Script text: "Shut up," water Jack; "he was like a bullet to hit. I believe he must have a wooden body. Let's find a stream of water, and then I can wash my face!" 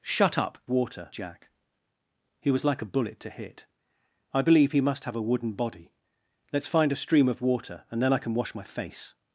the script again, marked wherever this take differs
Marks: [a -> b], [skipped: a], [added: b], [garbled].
"Shut up," water Jack; "he was like a bullet to hit. I believe he must have a wooden body. Let's find a stream of water, and then I can wash my face!"